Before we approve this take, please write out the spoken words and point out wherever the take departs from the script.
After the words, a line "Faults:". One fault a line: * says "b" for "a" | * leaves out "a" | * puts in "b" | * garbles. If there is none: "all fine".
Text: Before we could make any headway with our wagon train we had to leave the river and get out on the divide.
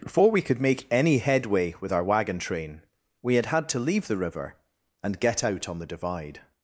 Before we could make any headway with our wagon train we had had to leave the river and get out on the divide.
Faults:
* puts in "had"